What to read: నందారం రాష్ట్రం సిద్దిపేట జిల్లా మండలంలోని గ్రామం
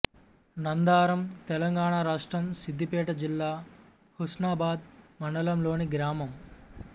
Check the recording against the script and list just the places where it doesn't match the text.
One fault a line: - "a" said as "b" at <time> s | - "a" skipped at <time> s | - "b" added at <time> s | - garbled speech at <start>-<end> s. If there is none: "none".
- "తెలంగాణ" added at 1.5 s
- "హుస్నాబాద్" added at 4.2 s